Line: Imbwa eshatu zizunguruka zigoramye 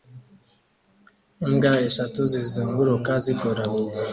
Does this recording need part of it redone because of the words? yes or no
no